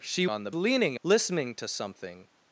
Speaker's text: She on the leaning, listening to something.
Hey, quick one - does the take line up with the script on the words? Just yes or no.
yes